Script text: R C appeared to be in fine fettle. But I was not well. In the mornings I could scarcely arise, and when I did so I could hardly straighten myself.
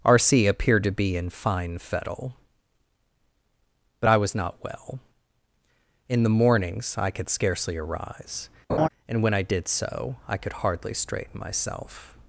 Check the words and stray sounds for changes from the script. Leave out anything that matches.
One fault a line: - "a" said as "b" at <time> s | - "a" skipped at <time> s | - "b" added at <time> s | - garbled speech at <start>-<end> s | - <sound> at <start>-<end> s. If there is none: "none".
- laugh at 8.7-8.9 s